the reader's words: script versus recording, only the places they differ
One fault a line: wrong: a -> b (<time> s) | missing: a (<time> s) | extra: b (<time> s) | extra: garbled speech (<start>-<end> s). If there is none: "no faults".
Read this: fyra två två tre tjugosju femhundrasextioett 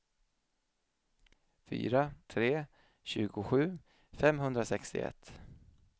missing: två två (2.1 s)